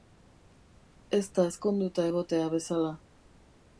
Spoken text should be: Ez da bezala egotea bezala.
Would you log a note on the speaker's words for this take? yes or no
yes